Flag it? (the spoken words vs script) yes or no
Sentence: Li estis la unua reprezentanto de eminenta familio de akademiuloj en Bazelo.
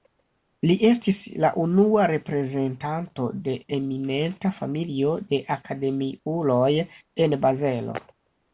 no